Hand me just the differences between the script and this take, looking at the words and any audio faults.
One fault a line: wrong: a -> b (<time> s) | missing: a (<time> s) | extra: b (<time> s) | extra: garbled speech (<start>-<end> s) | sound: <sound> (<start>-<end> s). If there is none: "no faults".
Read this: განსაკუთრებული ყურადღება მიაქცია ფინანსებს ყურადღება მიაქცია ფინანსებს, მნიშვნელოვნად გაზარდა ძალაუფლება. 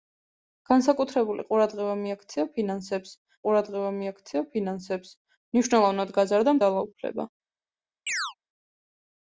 sound: chirp (8.1-8.3 s)